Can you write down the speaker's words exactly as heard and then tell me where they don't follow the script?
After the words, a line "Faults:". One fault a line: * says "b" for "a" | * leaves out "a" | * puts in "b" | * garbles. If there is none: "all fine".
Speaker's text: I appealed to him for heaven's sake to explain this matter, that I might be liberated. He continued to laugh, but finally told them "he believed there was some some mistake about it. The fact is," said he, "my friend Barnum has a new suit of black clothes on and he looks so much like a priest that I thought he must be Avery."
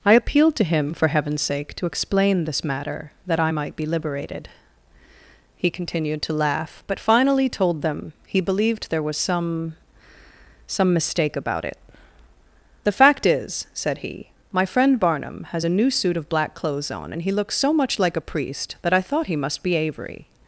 I appealed to him for heaven's sake to explain this matter, that I might be liberated. He continued to laugh, but finally told them "he believed there was some some mistake about it. The fact is," said he, "my friend Barnum has a new suit of black clothes on and he looks so much like a priest that I thought he must be Avery."
Faults:
all fine